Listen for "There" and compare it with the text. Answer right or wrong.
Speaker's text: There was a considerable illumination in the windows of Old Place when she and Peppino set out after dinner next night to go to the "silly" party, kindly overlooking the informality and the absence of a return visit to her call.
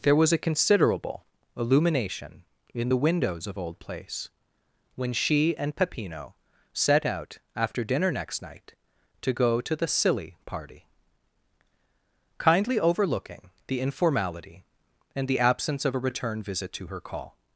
right